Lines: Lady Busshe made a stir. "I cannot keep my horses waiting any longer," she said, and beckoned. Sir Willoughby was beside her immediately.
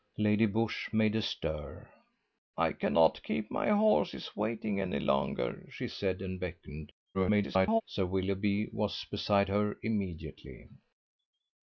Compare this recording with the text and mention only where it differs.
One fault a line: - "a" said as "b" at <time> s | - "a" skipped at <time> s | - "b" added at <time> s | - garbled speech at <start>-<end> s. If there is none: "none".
- garbled speech at 7.1-7.8 s